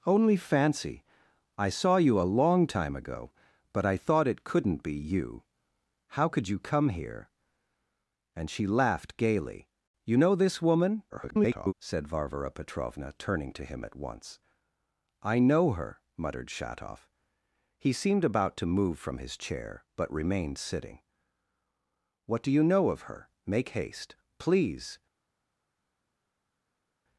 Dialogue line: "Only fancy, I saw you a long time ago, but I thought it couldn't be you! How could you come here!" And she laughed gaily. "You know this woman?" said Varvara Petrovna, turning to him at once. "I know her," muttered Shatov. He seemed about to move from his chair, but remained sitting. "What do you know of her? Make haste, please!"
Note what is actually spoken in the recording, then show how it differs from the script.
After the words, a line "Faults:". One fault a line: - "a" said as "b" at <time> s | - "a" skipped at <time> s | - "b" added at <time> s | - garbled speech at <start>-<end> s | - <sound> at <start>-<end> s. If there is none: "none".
"Only fancy, I saw you a long time ago, but I thought it couldn't be you! How could you come here!" And she laughed gaily. "You know this woman?" [garbled] said Varvara Petrovna, turning to him at once. "I know her," muttered Shatov. He seemed about to move from his chair, but remained sitting. "What do you know of her? Make haste, please!"
Faults:
- garbled speech at 11.1-11.7 s